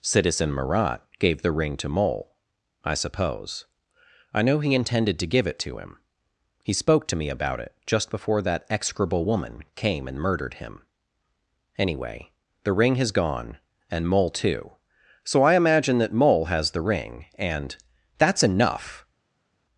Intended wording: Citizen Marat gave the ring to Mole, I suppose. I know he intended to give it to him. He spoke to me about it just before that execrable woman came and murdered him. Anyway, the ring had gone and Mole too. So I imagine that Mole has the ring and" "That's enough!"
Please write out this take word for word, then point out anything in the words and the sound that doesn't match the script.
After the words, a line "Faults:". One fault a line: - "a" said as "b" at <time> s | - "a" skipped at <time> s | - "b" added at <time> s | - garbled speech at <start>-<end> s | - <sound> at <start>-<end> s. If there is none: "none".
Citizen Marat gave the ring to Mole, I suppose. I know he intended to give it to him. He spoke to me about it just before that execrable woman came and murdered him. Anyway, the ring has gone and Mole too. So I imagine that Mole has the ring and" "That's enough!"
Faults:
- "had" said as "has" at 12.9 s